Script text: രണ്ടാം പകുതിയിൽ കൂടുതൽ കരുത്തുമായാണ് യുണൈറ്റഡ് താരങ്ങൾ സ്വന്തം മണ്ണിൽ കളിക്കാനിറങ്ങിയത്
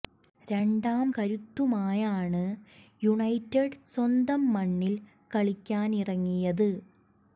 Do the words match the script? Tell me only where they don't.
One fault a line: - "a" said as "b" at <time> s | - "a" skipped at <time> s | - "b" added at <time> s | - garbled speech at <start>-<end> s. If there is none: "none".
- "പകുതിയിൽ കൂടുതൽ" skipped at 1.1 s
- "താരങ്ങൾ" skipped at 3.6 s